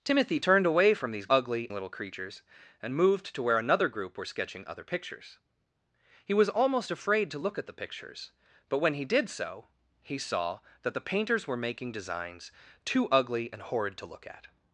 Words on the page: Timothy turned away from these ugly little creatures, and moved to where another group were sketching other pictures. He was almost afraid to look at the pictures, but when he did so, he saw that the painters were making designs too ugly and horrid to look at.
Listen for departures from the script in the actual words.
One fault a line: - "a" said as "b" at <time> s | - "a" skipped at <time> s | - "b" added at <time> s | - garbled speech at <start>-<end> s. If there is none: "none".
none